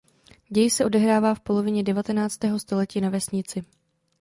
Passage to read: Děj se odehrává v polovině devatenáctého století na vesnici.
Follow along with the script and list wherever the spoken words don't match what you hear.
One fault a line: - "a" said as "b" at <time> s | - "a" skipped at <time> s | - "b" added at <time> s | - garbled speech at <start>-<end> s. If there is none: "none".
none